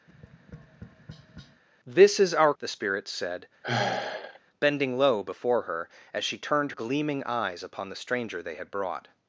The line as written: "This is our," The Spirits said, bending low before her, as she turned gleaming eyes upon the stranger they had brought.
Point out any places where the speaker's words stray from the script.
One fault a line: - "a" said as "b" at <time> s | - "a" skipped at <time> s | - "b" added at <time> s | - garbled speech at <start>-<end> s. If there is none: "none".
none